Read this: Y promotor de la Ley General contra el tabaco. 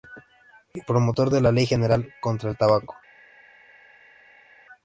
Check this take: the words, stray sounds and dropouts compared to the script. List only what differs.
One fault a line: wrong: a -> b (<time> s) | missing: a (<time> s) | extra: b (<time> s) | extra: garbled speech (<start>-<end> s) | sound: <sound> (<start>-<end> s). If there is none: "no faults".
no faults